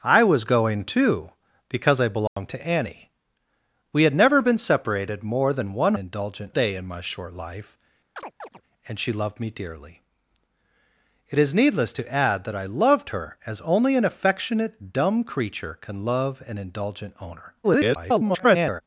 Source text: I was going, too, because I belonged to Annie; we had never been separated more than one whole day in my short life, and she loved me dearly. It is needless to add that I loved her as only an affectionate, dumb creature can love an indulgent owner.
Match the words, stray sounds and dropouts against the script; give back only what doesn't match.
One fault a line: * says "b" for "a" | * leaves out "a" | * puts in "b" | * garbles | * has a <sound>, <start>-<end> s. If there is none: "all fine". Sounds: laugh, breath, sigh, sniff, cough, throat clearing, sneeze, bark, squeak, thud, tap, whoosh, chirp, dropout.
* has a dropout, 2.3-2.4 s
* says "indulgent" for "whole"
* has a chirp, 8.2-8.6 s
* garbles